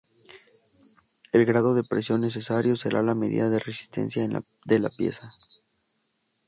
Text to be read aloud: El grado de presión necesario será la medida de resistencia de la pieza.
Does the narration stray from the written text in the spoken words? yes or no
no